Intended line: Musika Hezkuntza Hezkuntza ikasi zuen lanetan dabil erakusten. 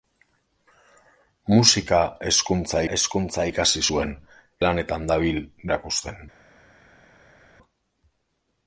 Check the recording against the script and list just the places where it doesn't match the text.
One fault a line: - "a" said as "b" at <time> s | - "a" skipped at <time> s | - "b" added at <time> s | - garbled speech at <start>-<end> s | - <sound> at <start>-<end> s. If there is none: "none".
none